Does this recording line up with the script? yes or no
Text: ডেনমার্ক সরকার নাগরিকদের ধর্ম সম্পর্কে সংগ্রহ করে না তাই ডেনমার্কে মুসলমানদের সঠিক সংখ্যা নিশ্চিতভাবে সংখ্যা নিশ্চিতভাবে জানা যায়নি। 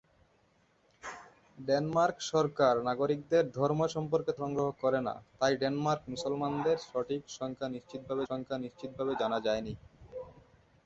yes